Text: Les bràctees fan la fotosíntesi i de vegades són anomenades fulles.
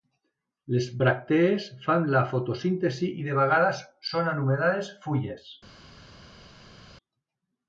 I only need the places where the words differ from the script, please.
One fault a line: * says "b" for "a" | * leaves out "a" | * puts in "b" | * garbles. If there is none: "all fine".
all fine